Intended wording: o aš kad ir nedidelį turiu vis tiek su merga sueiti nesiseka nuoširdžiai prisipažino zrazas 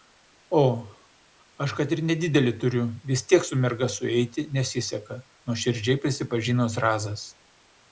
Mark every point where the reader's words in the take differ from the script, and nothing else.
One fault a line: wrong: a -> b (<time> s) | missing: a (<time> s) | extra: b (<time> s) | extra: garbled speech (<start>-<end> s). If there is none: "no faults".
no faults